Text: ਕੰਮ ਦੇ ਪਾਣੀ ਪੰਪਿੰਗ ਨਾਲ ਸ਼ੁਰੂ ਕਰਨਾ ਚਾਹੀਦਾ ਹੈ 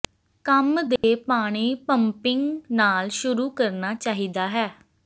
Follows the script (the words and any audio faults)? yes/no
no